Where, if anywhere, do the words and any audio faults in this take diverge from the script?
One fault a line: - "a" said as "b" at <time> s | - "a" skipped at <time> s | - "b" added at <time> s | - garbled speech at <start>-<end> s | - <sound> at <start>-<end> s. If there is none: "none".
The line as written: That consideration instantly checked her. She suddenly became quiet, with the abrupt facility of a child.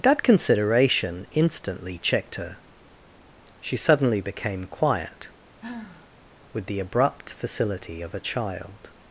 - sigh at 5.6-6.2 s